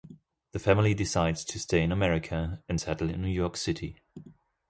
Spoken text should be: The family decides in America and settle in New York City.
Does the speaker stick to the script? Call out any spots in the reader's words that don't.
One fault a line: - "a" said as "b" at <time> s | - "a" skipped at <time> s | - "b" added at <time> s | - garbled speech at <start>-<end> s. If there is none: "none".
- "to stay" added at 1.4 s